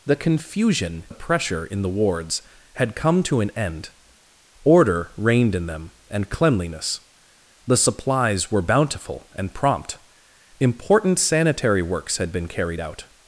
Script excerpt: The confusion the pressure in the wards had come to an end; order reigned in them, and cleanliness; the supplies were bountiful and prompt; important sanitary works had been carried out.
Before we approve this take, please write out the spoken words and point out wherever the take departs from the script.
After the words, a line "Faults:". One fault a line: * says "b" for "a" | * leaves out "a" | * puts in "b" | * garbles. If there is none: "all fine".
The confusion the pressure in the wards had come to an end; order reigned in them, and cleanliness; the supplies were bountiful and prompt; important sanitary works had been carried out.
Faults:
all fine